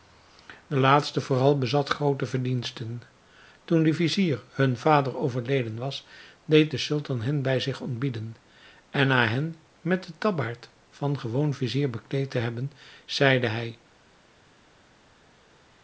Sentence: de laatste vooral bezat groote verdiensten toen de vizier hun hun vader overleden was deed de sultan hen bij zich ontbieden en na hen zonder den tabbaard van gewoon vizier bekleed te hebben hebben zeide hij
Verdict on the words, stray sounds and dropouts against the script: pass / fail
fail